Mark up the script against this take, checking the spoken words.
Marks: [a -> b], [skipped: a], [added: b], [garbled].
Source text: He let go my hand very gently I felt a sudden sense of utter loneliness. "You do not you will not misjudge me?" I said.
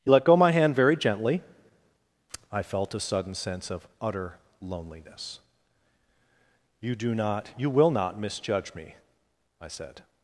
He let go my hand very gently I felt a sudden sense of utter loneliness. "You do not you will not misjudge me?" I said.